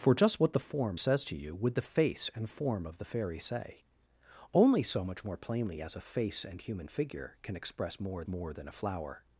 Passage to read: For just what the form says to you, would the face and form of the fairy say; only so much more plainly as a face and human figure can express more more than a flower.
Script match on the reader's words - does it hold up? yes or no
yes